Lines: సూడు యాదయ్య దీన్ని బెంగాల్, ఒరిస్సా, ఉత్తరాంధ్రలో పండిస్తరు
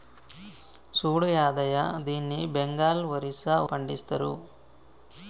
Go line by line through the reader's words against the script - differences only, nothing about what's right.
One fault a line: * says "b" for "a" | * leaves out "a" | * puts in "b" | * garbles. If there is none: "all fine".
* leaves out "ఉత్తరాంధ్రలో"